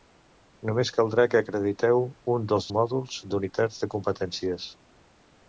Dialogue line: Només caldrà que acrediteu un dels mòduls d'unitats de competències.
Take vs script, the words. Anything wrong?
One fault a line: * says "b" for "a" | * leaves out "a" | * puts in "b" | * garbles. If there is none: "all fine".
all fine